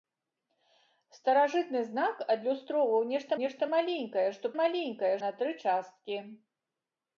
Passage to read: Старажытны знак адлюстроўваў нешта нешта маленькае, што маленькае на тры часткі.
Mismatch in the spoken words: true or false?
false